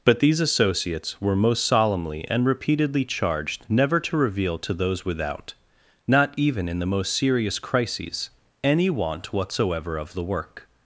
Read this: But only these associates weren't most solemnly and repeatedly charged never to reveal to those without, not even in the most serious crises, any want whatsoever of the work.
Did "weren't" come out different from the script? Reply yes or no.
yes